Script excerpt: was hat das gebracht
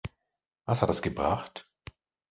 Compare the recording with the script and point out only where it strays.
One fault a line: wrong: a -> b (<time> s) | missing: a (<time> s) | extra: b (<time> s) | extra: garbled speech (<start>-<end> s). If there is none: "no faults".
no faults